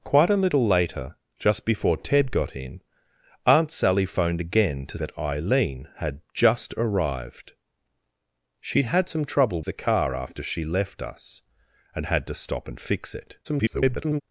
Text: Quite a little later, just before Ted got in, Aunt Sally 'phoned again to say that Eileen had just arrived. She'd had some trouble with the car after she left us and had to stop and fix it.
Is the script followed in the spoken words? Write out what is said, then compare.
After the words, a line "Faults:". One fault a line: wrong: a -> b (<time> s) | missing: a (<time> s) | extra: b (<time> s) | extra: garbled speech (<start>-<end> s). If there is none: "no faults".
Quite a little later, just before Ted got in, Aunt Sally 'phoned again to that Eileen had just arrived. She'd had some trouble the car after she left us and had to stop and fix it. [garbled]
Faults:
missing: say (5.0 s)
missing: with (9.6 s)
extra: garbled speech (13.4-14.2 s)